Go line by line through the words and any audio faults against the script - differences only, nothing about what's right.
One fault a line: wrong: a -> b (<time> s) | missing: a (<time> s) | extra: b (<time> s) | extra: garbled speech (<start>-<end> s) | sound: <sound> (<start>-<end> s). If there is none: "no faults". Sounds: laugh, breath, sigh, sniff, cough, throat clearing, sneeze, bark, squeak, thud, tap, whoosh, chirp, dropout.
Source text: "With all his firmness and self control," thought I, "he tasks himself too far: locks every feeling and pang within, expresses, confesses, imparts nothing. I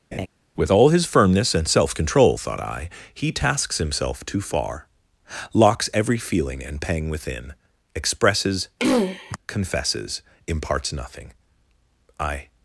sound: laugh (0.1-0.3 s)
sound: throat clearing (8.8-9.4 s)